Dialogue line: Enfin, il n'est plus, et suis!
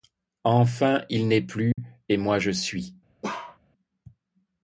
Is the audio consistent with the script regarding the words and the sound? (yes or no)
no